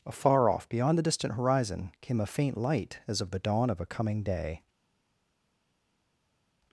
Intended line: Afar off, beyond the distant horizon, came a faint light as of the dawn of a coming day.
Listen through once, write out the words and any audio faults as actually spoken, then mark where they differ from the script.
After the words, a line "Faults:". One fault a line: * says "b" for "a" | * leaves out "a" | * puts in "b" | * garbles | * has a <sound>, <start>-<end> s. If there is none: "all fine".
Afar off, beyond the distant horizon, came a faint light as of the dawn of a coming day.
Faults:
all fine